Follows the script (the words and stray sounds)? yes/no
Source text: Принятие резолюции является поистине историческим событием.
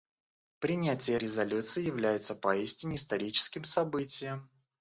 yes